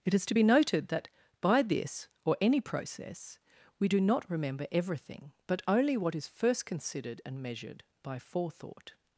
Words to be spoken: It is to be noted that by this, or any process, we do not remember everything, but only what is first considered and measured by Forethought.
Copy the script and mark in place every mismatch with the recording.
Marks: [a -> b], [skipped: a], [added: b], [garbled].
It is to be noted that by this, or any process, we do not remember everything, but only what is first considered and measured by Forethought.